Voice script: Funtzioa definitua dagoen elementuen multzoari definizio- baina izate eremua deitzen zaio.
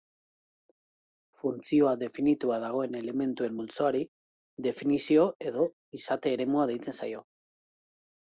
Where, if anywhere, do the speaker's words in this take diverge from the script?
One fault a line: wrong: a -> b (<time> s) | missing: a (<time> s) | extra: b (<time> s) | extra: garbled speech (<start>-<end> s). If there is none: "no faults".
wrong: baina -> edo (5.5 s)